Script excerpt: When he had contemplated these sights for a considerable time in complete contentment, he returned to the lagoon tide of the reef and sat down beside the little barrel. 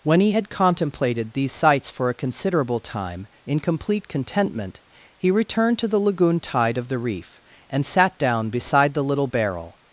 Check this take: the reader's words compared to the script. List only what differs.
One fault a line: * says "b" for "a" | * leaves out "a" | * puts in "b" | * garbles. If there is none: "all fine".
all fine